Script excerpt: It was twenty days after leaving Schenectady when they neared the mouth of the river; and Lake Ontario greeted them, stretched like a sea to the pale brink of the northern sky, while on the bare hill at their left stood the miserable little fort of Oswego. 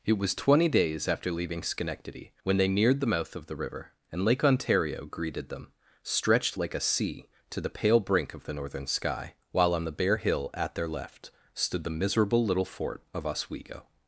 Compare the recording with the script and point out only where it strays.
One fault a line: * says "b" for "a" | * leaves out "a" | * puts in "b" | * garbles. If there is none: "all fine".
all fine